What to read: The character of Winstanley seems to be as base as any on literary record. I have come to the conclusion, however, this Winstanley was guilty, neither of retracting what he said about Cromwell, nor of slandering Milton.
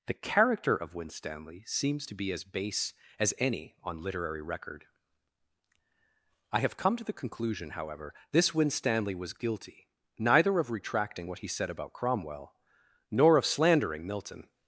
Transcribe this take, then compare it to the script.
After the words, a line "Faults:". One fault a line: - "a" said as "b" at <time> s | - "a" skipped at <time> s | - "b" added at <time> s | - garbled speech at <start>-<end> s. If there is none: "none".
The character of Winstanley seems to be as base as any on literary record. I have come to the conclusion, however, this Winstanley was guilty, neither of retracting what he said about Cromwell, nor of slandering Milton.
Faults:
none